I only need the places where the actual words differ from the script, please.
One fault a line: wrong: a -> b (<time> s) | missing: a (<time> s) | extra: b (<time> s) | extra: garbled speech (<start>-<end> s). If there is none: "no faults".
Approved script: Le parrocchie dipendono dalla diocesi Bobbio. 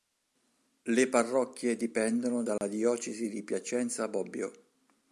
extra: di Piacenza (3.3 s)